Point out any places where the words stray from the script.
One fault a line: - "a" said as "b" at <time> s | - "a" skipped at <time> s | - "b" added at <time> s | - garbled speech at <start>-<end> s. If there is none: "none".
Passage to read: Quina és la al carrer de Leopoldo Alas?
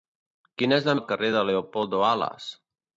none